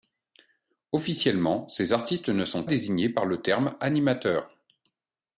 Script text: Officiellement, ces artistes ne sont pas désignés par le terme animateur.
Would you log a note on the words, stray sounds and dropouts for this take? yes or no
yes